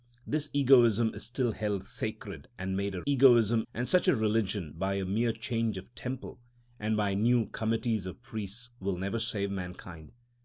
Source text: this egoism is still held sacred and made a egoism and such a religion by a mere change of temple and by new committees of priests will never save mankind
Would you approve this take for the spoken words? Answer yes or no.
yes